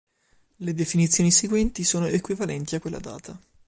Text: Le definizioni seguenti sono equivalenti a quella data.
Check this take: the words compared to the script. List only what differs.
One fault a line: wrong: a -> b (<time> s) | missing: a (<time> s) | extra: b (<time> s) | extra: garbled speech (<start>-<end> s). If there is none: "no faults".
no faults